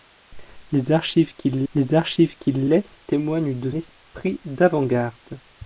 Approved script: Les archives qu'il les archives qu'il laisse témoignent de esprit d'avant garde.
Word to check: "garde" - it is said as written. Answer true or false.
true